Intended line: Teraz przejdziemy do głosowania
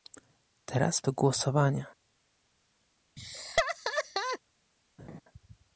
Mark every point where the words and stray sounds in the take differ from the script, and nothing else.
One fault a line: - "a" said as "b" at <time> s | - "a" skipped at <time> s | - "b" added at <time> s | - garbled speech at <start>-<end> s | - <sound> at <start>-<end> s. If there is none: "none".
- "przejdziemy" skipped at 1.0 s
- laugh at 3.2-4.4 s
- laugh at 5.0-5.2 s